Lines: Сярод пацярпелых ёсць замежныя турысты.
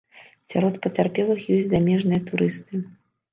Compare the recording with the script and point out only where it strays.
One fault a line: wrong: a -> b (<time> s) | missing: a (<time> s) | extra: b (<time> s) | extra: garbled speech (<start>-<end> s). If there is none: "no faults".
no faults